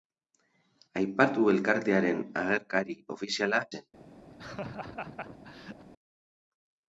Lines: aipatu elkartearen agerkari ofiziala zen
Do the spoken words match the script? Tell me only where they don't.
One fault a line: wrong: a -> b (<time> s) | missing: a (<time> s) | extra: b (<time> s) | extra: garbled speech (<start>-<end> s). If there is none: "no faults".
no faults